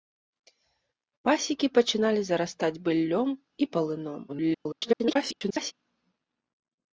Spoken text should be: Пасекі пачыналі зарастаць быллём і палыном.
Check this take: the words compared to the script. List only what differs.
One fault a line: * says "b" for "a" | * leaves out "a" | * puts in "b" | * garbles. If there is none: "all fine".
* garbles